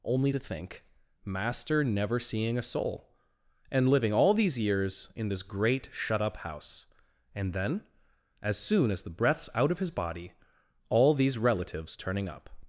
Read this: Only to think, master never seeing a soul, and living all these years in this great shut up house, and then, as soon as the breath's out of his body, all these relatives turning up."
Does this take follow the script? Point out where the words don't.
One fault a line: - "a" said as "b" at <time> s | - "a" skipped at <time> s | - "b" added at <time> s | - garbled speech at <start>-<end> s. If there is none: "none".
none